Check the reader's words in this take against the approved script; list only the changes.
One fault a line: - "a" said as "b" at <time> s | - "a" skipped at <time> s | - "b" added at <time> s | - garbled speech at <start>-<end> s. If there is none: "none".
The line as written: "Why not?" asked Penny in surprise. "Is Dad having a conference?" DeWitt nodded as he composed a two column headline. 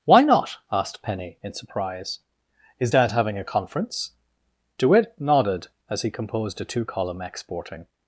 - "headline" said as "exporting" at 7.2 s